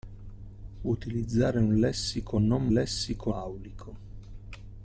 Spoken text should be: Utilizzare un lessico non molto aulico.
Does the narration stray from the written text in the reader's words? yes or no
yes